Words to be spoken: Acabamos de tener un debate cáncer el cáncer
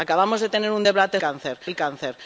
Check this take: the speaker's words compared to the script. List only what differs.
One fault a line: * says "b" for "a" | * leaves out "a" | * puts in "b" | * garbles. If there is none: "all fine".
all fine